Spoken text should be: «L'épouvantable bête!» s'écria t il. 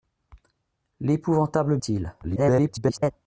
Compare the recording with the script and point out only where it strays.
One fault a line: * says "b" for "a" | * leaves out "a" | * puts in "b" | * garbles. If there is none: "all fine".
* leaves out "bête s'écria"
* garbles